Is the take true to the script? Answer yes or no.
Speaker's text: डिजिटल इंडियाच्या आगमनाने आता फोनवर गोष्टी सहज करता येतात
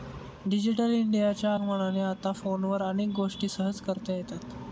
no